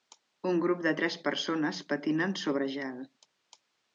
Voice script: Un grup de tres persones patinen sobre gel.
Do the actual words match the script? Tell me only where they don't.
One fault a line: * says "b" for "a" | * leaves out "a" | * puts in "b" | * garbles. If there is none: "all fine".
all fine